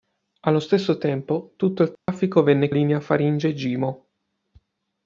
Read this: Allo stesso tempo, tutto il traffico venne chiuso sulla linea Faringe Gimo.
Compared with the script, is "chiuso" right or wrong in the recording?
wrong